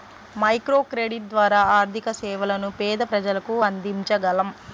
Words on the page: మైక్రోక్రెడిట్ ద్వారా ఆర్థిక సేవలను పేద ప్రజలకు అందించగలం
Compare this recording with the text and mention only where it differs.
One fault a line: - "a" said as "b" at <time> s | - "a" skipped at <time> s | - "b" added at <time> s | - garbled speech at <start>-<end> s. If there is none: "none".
none